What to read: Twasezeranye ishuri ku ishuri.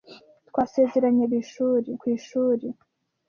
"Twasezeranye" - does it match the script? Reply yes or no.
yes